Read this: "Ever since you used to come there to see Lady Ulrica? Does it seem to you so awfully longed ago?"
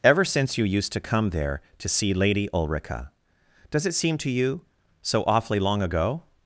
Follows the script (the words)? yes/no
no